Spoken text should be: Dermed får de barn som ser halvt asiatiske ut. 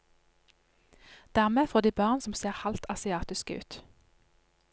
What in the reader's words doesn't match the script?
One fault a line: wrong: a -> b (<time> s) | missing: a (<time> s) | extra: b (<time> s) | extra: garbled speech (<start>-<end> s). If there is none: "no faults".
no faults